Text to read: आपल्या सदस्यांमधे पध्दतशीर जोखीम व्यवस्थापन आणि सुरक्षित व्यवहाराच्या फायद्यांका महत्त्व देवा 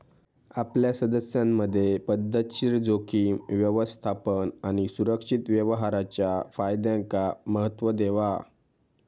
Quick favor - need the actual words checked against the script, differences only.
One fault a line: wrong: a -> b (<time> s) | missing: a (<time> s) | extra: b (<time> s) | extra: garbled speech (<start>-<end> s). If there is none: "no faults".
no faults